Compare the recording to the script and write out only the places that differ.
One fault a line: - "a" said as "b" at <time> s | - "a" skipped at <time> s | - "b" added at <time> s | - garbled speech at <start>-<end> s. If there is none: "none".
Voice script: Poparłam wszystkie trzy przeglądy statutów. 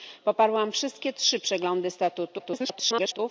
- garbled speech at 2.4-3.2 s